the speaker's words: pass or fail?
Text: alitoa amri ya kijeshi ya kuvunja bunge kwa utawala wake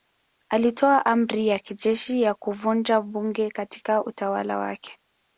fail